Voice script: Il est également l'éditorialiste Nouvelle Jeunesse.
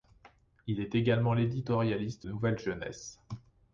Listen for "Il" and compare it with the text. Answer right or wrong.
right